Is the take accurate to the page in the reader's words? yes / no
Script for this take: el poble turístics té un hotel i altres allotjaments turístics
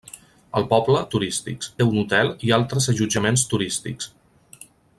yes